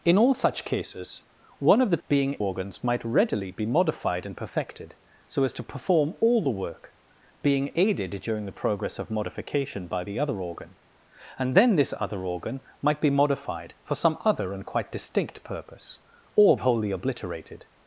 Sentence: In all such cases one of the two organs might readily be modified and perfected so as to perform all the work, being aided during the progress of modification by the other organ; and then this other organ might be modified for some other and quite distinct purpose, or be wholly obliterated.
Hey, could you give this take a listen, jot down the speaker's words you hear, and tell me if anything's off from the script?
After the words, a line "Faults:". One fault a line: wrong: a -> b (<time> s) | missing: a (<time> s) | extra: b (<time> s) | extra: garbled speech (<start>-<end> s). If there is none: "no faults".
In all such cases one of the being organs might readily be modified and perfected so as to perform all the work, being aided during the progress of modification by the other organ; and then this other organ might be modified for some other and quite distinct purpose, or wholly obliterated.
Faults:
wrong: two -> being (2.1 s)
missing: be (16.5 s)